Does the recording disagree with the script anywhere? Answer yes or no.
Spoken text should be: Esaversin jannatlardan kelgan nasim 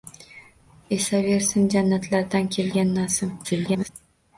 yes